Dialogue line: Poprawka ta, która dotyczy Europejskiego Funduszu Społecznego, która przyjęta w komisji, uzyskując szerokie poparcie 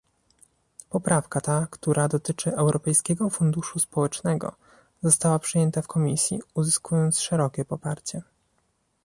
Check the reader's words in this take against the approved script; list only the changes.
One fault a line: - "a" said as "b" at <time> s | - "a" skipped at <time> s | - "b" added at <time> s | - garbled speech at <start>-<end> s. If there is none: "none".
- "która" said as "została" at 5.0 s